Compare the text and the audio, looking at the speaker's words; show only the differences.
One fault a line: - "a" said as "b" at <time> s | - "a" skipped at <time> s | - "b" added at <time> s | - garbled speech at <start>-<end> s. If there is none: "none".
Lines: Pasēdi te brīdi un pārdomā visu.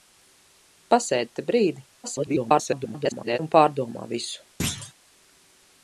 - garbled speech at 2.0-3.4 s